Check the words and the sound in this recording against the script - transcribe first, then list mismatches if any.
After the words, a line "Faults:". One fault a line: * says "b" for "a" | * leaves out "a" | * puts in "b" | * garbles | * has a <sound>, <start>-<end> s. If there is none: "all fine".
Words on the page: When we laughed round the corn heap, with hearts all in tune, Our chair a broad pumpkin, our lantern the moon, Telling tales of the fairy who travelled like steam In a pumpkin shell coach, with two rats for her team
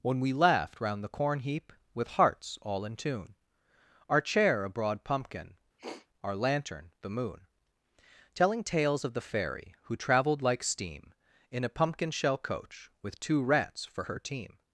When we laughed round the corn heap, with hearts all in tune, Our chair a broad pumpkin, our lantern the moon, Telling tales of the fairy who travelled like steam In a pumpkin shell coach, with two rats for her team
Faults:
* has a sniff, 5.8-6.1 s